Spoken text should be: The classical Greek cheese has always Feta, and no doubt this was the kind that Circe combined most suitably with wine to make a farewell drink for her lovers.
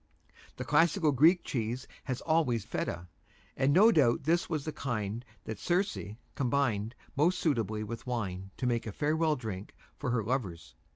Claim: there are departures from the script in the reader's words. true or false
false